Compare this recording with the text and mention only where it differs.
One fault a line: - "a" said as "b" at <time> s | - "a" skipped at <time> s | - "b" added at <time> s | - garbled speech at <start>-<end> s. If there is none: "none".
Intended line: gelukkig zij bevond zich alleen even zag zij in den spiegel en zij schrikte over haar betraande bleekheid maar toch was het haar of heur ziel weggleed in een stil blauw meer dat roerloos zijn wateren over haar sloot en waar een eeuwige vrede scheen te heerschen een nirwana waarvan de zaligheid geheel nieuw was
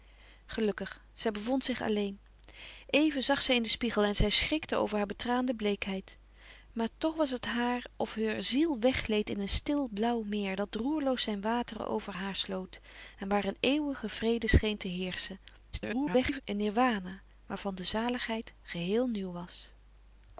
- garbled speech at 15.7-16.4 s